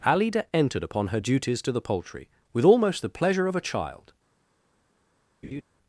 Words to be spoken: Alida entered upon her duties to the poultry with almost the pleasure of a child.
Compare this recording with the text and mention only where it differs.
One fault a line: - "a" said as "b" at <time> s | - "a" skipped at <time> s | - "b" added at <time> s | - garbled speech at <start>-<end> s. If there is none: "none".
none